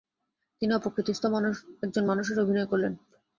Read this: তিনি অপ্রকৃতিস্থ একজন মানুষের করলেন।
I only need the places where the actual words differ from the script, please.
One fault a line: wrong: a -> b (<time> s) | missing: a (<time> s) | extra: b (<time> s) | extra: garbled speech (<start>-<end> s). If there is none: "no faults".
extra: অভিনয় (2.4 s)